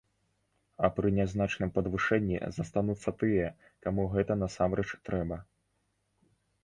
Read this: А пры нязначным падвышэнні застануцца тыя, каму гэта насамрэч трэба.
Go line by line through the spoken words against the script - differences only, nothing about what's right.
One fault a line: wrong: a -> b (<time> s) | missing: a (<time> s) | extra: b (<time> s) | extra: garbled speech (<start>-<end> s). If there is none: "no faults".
no faults